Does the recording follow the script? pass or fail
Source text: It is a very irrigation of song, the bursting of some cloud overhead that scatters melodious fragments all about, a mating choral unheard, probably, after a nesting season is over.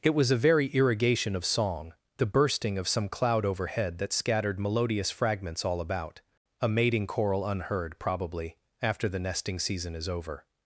fail